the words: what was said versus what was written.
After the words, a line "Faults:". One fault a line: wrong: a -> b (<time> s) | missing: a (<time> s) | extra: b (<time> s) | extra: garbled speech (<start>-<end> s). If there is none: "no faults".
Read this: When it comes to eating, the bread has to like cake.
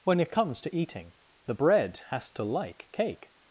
When it comes to eating, the bread has to like cake.
Faults:
no faults